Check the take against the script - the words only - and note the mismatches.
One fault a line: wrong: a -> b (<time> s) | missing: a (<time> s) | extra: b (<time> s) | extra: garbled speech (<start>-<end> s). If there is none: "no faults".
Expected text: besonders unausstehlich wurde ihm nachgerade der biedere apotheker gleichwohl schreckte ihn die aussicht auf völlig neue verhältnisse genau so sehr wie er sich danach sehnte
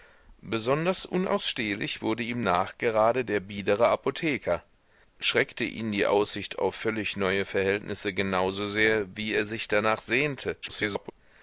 missing: gleichwohl (4.6 s)
extra: garbled speech (10.6-11.1 s)